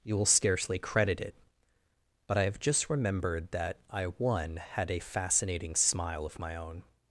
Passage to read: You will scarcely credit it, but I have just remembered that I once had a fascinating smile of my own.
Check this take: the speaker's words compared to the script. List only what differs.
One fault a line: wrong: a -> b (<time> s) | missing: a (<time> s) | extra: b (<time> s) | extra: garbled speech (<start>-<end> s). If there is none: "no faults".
wrong: once -> one (4.0 s)